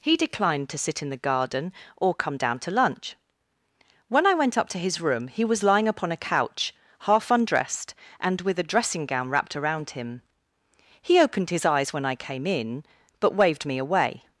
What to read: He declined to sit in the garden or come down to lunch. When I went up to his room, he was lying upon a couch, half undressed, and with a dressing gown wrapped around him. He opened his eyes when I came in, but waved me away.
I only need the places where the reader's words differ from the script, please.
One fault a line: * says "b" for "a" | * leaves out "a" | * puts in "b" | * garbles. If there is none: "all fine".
all fine